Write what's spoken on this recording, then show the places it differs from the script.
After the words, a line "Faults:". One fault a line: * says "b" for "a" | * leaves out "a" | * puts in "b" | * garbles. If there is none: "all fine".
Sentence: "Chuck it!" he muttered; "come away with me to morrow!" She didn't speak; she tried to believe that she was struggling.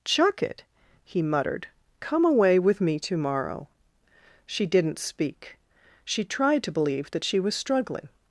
"Chuck it!" he muttered; "come away with me to morrow!" She didn't speak; she tried to believe that she was struggling.
Faults:
all fine